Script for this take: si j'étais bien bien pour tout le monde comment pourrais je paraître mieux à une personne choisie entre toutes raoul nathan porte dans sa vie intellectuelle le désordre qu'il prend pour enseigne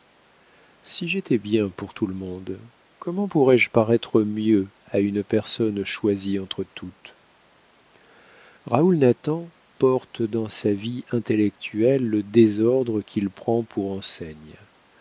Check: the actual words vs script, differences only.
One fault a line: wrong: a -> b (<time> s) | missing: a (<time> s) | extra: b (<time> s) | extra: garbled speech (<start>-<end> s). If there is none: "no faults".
missing: bien (1.7 s)